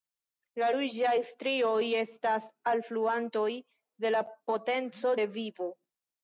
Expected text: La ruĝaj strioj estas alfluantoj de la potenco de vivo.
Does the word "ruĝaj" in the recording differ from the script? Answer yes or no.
no